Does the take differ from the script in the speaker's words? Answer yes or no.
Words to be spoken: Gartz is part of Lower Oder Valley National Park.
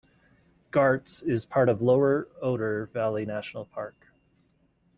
no